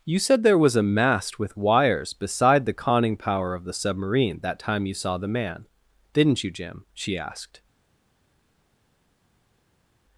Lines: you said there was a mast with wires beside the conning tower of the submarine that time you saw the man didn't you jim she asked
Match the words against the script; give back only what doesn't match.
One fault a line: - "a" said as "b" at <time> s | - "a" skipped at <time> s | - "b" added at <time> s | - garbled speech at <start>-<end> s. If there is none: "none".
- "tower" said as "power" at 3.2 s